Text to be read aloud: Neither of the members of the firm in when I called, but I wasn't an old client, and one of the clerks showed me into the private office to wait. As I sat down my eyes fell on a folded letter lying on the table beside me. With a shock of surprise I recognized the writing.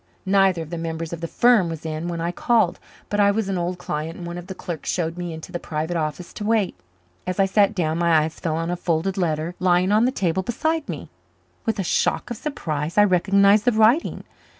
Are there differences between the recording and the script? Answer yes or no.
yes